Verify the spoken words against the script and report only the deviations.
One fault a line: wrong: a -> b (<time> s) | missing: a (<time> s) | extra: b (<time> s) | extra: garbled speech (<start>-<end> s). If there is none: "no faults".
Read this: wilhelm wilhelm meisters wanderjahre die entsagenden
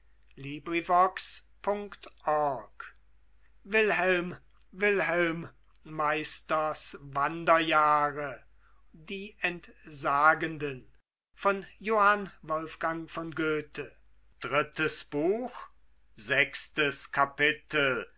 no faults